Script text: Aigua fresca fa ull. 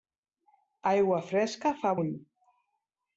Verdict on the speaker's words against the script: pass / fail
pass